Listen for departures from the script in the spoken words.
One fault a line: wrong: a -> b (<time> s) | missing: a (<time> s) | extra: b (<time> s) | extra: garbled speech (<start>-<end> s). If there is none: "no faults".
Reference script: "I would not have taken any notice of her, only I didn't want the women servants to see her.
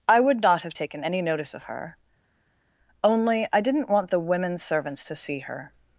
no faults